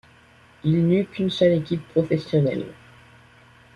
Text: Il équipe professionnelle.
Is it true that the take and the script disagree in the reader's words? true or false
true